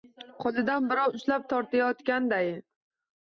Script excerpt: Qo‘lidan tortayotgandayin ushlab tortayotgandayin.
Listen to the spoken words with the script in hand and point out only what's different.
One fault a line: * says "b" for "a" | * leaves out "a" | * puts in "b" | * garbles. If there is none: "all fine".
* says "birov" for "tortayotgandayin"